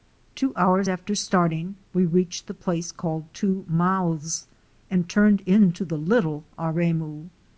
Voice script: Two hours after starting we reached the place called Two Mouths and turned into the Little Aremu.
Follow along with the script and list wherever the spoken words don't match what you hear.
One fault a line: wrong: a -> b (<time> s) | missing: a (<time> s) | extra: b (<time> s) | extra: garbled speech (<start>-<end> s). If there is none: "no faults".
no faults